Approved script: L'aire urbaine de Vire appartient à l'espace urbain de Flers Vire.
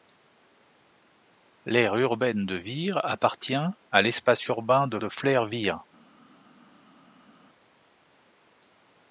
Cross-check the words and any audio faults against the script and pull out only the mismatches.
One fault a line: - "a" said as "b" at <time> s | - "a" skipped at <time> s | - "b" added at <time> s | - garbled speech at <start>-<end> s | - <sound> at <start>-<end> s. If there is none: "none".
- "de" added at 5.0 s